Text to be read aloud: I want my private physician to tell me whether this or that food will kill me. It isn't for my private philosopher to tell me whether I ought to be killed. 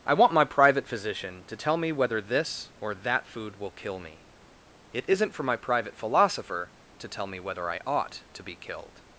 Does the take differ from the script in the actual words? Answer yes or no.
no